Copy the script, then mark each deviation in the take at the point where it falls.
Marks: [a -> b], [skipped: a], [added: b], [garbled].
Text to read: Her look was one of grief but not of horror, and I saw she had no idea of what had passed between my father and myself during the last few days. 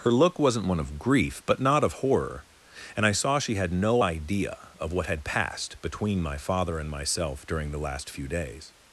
Her look [was -> wasn't] one of grief but not of horror, and I saw she had no idea of what had passed between my father and myself during the last few days.